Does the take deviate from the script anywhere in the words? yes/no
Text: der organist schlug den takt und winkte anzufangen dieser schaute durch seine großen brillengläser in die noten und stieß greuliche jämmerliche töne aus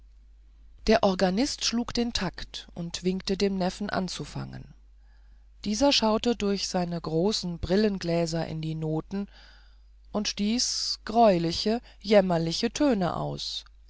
yes